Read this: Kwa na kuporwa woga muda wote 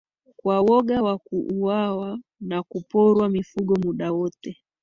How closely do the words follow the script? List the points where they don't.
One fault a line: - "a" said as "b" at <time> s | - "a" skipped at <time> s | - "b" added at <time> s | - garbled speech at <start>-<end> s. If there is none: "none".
- "woga wa kuuawa" added at 0.6 s
- "woga" said as "mifugo" at 3.3 s